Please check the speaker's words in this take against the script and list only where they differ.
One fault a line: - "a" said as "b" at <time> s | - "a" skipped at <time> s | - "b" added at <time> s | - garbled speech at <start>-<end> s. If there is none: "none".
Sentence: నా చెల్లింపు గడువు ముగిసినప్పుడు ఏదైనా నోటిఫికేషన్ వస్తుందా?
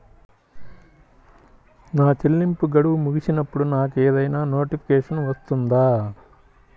- "నాకు" added at 3.7 s